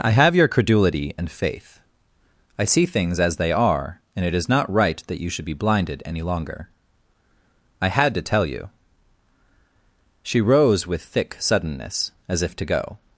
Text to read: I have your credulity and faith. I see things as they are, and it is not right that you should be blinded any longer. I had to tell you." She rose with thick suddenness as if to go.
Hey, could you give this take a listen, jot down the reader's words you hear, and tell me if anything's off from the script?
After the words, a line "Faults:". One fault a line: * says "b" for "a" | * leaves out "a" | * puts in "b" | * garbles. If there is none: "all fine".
I have your credulity and faith. I see things as they are, and it is not right that you should be blinded any longer. I had to tell you." She rose with thick suddenness as if to go.
Faults:
all fine